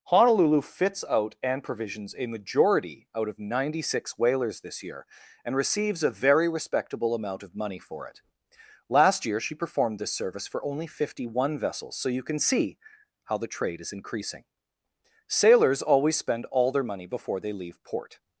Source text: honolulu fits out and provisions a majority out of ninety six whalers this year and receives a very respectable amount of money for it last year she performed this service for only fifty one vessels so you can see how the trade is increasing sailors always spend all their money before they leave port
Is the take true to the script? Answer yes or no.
yes